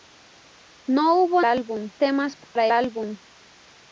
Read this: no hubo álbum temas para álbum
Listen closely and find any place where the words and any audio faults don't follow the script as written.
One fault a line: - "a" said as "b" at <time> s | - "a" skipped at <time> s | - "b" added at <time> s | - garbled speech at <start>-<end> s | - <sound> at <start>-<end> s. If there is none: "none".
- dropout at 2.4-2.6 s